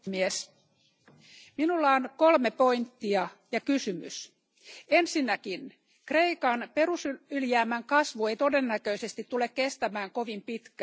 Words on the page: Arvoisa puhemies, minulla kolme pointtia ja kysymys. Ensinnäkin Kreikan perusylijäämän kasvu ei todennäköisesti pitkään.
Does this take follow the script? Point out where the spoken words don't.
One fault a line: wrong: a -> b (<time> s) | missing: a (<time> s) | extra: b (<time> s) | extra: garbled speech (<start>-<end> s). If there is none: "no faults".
extra: on (1.9 s)
extra: tule kestämään kovin (9.2 s)